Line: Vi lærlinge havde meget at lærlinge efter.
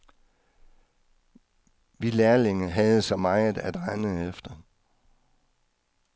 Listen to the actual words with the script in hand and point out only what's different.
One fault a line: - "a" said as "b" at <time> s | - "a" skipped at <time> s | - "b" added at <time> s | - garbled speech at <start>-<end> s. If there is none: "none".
- "så" added at 3.0 s
- "lærlinge" said as "rende" at 3.8 s